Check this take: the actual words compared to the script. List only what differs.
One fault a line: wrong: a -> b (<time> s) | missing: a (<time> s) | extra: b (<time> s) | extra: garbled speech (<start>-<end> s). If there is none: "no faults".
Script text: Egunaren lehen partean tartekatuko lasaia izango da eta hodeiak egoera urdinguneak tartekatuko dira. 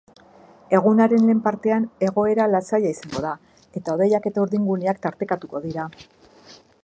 wrong: tartekatuko -> egoera (2.1 s)
wrong: egoera -> eta (4.3 s)